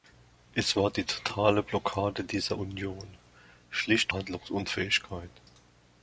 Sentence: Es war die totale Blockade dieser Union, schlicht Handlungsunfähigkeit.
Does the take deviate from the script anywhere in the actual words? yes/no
no